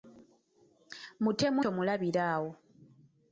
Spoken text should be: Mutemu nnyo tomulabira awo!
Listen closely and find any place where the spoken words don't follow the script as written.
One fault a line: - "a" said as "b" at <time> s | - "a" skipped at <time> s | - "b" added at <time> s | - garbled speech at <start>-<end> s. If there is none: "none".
- "nnyo" skipped at 1.6 s